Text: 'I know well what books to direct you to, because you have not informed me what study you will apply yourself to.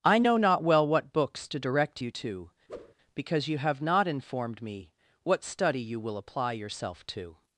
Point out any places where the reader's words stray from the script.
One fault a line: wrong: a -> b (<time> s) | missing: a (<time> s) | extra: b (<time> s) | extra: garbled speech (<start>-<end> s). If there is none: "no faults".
extra: not (0.4 s)